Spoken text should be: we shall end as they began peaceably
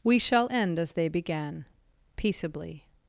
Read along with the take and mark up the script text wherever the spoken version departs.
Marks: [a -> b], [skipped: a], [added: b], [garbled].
we shall end as they began peaceably